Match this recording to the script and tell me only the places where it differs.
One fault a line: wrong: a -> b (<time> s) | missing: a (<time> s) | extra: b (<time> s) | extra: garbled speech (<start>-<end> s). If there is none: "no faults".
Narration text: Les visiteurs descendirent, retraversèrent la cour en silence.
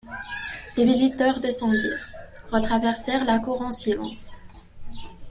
no faults